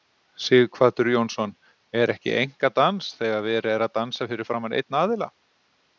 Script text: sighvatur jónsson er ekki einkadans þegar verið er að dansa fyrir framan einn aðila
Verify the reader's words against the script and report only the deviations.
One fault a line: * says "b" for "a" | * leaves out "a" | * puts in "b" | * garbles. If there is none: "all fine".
all fine